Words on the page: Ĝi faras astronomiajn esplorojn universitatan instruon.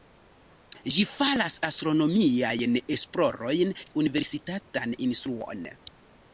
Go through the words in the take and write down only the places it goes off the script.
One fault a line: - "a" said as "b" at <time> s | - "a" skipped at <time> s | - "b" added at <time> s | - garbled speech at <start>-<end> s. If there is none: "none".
none